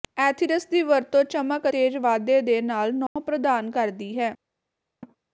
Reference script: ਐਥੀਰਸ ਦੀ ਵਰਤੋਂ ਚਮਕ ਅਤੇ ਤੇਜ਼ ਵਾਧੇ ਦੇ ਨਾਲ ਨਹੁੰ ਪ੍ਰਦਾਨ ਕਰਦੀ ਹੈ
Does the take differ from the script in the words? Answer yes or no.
yes